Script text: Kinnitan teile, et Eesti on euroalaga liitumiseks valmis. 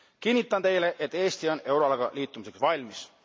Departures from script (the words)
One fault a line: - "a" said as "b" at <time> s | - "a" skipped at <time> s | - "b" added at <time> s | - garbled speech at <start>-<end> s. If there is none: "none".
none